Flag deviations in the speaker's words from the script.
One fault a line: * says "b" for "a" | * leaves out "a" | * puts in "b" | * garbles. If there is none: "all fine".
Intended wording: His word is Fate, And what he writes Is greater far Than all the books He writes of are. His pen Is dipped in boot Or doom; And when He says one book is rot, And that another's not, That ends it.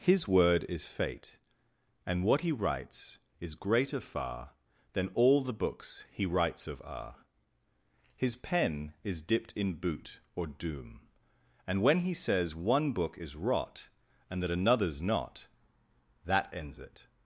all fine